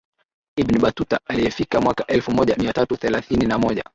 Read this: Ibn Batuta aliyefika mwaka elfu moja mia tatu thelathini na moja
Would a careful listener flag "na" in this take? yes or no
no